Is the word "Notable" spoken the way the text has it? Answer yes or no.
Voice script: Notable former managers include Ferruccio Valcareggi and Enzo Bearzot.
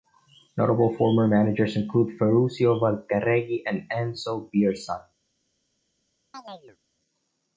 yes